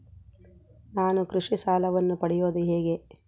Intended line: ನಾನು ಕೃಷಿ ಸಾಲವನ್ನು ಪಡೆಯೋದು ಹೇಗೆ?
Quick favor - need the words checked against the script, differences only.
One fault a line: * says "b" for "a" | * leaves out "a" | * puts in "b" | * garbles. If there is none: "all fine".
all fine